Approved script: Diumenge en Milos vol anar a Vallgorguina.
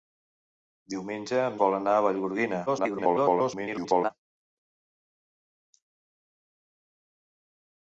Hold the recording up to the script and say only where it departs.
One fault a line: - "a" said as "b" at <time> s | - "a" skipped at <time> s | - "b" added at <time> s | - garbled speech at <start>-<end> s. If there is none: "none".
- "Milos" skipped at 1.6 s
- garbled speech at 2.7-4.1 s